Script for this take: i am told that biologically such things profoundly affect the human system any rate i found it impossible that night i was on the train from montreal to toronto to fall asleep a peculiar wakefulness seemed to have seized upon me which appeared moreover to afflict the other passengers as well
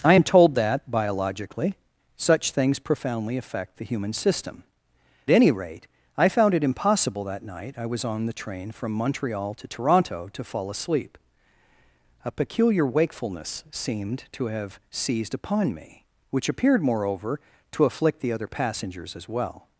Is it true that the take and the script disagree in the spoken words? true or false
false